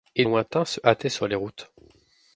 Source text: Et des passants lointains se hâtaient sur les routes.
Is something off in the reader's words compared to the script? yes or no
yes